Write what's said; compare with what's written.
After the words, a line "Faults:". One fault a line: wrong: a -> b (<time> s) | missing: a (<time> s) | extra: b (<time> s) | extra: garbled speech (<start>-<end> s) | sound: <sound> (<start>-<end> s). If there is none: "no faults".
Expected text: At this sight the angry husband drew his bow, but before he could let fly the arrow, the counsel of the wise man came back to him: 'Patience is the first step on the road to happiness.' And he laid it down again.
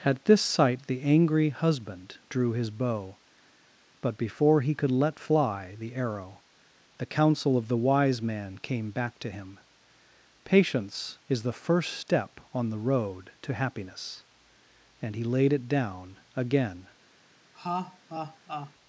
At this sight the angry husband drew his bow, but before he could let fly the arrow, the counsel of the wise man came back to him: 'Patience is the first step on the road to happiness.' And he laid it down again.
Faults:
sound: laugh (17.5-18.7 s)